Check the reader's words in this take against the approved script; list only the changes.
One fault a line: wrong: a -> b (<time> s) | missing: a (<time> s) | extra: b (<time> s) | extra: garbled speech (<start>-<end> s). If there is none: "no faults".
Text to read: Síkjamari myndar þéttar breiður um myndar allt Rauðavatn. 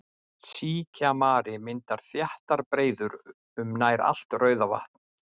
wrong: myndar -> nær (3.8 s)